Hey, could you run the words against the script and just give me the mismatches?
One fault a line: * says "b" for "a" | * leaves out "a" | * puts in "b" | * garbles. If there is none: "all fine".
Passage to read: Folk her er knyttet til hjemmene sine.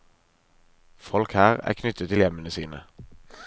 all fine